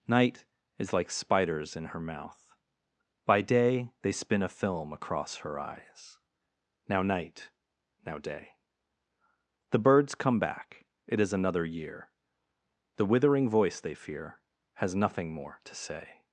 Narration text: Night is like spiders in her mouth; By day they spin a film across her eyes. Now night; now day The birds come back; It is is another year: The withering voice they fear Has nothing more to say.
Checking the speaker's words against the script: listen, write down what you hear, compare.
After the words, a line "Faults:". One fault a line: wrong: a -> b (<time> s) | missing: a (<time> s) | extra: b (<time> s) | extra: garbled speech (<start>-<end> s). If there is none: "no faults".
Night is like spiders in her mouth; By day they spin a film across her eyes. Now night; now day The birds come back; It is another year: The withering voice they fear Has nothing more to say.
Faults:
missing: is (11.3 s)